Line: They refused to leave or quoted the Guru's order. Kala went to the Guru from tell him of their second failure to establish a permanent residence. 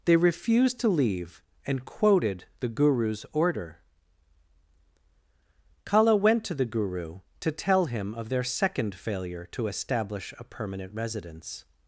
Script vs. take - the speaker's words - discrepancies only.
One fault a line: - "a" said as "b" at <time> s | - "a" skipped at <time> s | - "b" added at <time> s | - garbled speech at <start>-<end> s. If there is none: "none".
- "or" said as "and" at 1.6 s
- "from" said as "to" at 7.4 s